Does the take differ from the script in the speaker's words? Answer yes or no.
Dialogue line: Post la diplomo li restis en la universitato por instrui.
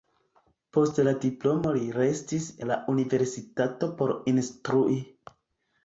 yes